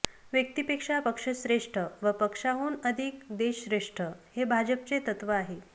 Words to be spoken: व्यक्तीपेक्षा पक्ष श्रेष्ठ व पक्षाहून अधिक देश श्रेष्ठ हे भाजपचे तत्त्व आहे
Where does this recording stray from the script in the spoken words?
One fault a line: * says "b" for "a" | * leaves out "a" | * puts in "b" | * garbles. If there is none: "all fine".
all fine